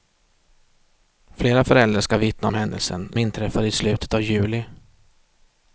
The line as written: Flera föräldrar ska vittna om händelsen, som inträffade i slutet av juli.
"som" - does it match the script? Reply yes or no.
no